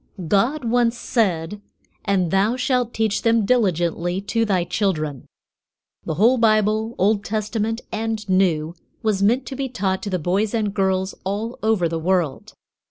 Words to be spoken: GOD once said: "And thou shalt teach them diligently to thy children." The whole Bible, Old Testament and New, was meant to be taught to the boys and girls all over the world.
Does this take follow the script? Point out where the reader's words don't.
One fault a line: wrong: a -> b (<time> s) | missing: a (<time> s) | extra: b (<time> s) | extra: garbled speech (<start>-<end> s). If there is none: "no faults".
no faults